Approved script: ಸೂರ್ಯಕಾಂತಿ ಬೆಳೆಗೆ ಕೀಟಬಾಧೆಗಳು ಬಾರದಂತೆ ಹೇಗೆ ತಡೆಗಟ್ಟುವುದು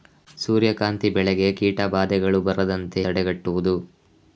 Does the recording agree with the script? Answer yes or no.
no